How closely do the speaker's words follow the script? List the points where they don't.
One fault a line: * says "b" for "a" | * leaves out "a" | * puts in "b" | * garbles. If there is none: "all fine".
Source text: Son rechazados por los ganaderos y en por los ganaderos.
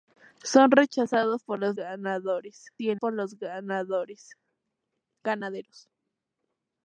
all fine